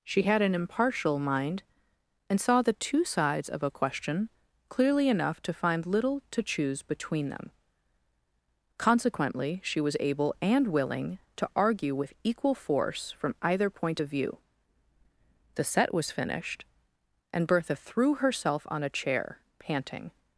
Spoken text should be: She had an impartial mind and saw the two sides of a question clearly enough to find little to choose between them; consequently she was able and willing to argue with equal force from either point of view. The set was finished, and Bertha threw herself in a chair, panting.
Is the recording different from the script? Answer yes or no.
yes